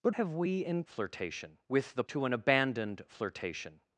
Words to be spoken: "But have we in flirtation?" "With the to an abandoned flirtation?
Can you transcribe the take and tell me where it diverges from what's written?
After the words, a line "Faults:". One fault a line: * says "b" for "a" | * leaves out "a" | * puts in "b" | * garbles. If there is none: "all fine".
"But have we in flirtation?" "With the to an abandoned flirtation?
Faults:
all fine